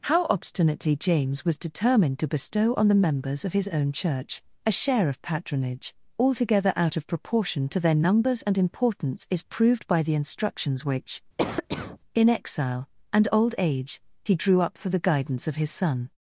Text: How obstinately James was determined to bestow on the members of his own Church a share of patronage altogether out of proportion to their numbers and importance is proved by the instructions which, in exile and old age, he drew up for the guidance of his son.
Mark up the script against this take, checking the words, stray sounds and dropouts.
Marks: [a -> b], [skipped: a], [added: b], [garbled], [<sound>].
How obstinately James was determined to bestow on the members of his own Church a share of patronage altogether out of proportion to their numbers and importance is proved by the instructions which, [cough] in exile and old age, he drew up for the guidance of his son.